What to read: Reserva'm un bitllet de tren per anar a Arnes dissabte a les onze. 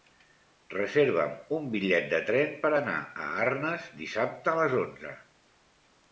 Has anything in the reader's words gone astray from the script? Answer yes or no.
no